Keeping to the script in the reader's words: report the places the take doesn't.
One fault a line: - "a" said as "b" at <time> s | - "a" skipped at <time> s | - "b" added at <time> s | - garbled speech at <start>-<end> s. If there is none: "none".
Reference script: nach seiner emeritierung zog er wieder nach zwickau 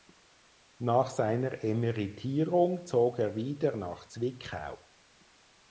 none